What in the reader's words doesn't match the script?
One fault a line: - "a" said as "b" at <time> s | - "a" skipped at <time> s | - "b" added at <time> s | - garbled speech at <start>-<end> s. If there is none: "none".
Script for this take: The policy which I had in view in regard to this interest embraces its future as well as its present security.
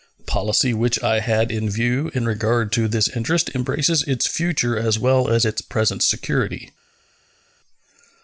none